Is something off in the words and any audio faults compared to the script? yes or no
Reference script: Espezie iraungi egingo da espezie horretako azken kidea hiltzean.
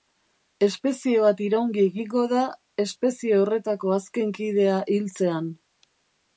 yes